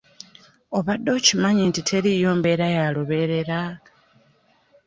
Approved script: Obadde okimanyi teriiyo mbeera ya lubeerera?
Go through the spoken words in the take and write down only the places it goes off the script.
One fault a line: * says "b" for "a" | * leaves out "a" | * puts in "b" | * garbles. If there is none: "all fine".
* puts in "nti"